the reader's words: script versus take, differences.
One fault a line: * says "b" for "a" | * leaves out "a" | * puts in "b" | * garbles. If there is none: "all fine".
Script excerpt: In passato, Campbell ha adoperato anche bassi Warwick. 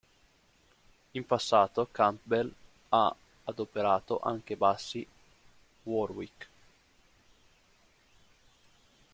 all fine